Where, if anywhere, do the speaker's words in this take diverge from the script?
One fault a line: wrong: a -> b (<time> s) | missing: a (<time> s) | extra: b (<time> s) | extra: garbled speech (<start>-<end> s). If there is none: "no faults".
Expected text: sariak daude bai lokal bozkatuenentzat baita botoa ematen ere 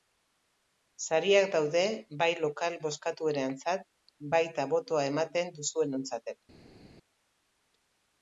extra: duzuenontzat (5.6 s)